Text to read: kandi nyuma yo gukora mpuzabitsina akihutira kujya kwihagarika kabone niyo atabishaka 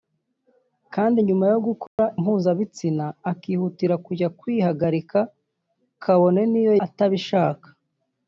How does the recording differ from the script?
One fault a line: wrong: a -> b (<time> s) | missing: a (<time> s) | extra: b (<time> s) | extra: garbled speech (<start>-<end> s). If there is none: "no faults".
no faults